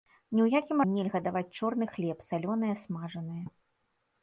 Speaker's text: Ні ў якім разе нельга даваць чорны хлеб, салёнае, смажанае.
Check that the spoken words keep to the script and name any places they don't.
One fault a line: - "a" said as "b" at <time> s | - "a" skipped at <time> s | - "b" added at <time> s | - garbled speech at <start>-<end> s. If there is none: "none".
- "разе" skipped at 0.8 s